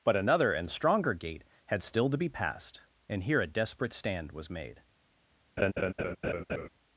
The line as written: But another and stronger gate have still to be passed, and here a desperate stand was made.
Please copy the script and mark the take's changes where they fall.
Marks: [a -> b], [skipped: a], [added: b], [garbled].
But another and stronger gate [have -> had] still to be passed, and here a desperate stand was made.